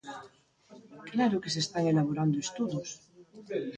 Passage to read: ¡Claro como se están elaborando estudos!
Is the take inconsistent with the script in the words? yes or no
yes